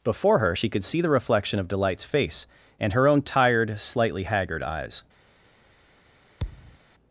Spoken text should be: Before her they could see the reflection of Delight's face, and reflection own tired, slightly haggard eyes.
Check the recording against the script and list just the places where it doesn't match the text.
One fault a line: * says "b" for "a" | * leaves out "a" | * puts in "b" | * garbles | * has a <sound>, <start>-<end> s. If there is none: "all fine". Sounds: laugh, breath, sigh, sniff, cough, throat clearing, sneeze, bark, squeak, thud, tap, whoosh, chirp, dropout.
* says "she" for "they"
* says "her" for "reflection"
* has a thud, 6.4-6.8 s